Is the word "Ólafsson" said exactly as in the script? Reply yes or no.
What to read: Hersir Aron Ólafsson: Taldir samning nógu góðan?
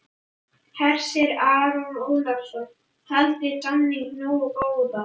yes